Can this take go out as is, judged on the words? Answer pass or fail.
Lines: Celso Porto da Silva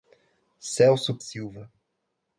fail